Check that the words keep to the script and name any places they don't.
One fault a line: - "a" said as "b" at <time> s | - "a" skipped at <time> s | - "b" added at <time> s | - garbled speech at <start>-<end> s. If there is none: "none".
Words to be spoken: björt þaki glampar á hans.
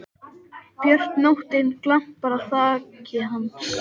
- "þaki" said as "nóttin" at 1.2 s
- "þaki" added at 2.5 s